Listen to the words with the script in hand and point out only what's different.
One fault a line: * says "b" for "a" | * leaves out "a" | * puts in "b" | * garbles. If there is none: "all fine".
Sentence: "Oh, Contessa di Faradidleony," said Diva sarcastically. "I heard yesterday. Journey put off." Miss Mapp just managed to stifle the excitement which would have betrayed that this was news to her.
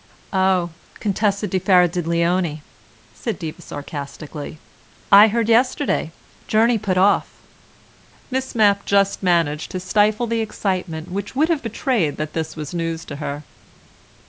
all fine